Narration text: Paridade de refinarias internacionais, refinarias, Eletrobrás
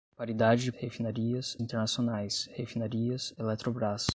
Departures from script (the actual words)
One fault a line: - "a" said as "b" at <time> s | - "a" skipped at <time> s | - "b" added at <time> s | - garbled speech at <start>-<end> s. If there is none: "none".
none